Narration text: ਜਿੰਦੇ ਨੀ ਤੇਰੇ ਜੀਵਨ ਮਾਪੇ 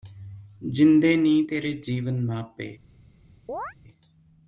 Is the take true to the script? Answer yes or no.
yes